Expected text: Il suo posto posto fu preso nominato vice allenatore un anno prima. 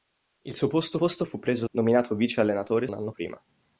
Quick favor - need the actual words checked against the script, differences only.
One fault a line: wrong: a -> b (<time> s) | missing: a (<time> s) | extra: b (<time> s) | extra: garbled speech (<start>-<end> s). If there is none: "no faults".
no faults